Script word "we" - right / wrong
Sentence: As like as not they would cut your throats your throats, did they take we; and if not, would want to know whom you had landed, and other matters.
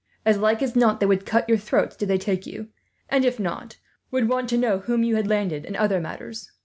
wrong